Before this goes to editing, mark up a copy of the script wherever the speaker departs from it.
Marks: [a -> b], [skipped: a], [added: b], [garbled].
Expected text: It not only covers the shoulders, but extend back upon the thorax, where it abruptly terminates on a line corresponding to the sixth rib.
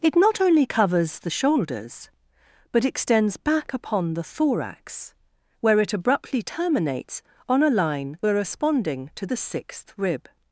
It not only covers the shoulders, but [extend -> extends] back upon the thorax, where it abruptly terminates on a line corresponding to the sixth rib.